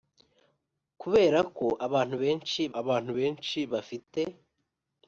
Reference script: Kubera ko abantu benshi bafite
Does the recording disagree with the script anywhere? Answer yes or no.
yes